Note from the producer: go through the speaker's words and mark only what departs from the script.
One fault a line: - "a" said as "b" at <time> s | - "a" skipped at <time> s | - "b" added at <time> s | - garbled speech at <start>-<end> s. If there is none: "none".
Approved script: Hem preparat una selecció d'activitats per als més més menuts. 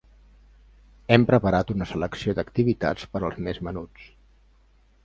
- "més" skipped at 3.6 s